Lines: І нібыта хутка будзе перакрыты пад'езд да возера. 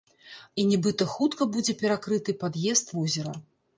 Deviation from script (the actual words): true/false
true